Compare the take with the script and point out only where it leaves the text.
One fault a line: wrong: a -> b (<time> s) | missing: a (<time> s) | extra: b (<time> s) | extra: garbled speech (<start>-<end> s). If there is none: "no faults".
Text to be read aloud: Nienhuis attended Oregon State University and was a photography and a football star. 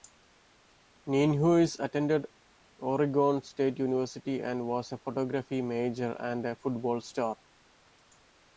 extra: major (5.6 s)